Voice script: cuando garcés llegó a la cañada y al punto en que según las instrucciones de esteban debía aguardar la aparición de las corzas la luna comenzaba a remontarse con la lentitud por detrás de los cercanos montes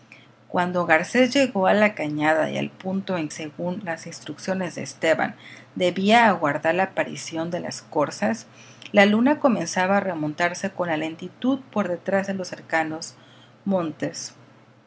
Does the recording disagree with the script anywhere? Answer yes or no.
yes